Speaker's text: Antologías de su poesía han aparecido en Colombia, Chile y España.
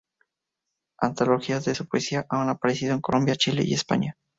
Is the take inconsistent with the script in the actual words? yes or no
no